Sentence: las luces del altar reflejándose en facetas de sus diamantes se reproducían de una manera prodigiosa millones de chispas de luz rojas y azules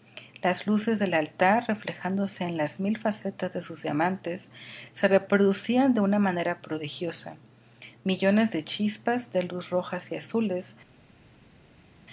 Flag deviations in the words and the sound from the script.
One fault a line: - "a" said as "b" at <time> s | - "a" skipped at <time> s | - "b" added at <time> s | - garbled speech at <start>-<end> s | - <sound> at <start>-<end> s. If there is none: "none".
- "las mil" added at 2.6 s